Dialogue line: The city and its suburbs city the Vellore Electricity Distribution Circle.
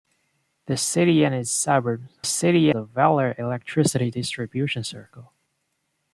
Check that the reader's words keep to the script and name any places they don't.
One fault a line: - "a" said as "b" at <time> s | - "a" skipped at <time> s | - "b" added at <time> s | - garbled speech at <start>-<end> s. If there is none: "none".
none